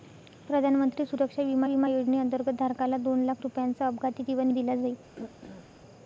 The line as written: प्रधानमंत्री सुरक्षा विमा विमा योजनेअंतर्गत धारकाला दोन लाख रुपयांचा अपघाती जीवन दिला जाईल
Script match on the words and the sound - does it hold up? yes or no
no